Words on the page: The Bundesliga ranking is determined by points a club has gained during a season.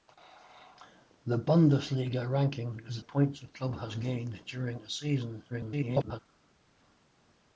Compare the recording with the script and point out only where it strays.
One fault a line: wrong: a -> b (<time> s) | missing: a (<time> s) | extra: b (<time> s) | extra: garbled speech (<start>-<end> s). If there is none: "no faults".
missing: determined by (3.0 s)
extra: garbled speech (5.5-6.2 s)